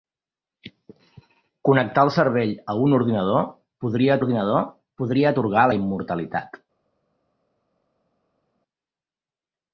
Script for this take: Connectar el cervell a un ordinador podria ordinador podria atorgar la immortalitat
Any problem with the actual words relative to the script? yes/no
no